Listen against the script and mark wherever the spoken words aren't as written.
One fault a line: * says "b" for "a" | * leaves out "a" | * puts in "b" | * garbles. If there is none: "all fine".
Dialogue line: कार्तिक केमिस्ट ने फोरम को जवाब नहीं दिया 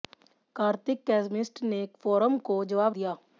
* leaves out "नहीं"